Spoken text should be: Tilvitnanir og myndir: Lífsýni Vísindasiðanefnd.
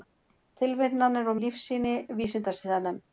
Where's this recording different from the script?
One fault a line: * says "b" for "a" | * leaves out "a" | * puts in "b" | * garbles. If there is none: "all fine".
* leaves out "myndir"